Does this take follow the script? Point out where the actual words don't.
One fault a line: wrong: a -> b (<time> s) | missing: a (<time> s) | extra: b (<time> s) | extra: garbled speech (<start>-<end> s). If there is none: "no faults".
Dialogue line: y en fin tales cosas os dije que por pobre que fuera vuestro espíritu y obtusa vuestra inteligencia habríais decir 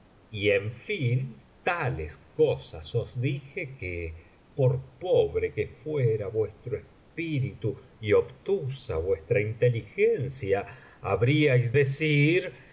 no faults